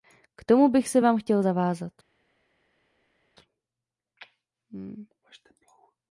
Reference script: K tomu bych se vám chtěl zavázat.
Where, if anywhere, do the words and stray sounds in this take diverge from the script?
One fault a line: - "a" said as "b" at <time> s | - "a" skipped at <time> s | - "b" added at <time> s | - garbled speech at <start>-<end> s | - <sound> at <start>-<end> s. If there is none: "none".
none